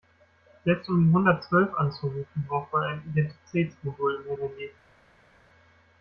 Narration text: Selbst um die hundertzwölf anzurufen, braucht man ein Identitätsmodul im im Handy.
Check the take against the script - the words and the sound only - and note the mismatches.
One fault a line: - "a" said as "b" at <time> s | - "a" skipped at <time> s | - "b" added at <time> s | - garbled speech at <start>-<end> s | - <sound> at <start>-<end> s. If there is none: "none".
none